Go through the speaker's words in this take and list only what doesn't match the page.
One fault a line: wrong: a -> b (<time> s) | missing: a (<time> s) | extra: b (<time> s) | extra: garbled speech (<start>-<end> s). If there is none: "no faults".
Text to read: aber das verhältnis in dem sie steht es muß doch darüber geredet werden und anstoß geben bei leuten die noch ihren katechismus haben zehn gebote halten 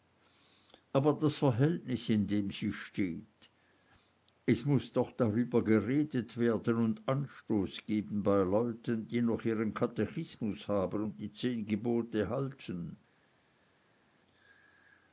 extra: und die (11.0 s)